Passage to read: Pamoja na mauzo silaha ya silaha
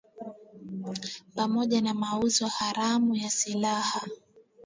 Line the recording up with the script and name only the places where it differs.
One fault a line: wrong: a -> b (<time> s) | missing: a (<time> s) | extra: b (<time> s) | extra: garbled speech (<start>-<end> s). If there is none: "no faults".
wrong: silaha -> haramu (2.5 s)